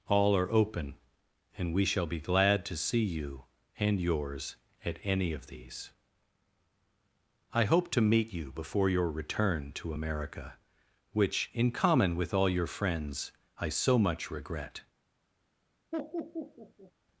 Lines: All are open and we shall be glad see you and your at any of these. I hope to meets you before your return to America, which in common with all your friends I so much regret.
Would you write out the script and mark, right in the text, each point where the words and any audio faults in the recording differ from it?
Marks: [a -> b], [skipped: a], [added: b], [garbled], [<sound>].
All are open and we shall be glad [added: to] see you and [your -> yours] at any of these. I hope to [meets -> meet] you before your return to America, which in common with all your friends I so much regret. [laugh]